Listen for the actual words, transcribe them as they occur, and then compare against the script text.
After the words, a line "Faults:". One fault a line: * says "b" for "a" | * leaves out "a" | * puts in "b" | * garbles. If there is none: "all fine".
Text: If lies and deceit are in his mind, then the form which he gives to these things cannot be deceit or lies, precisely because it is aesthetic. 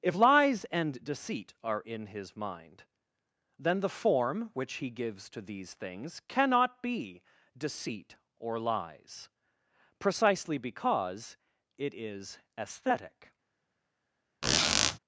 If lies and deceit are in his mind, then the form which he gives to these things cannot be deceit or lies, precisely because it is aesthetic.
Faults:
all fine